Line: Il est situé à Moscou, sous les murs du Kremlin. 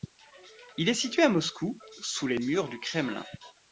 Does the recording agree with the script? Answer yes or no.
yes